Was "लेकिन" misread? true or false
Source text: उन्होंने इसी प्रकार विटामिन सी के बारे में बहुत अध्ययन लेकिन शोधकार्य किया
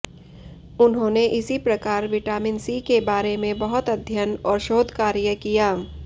true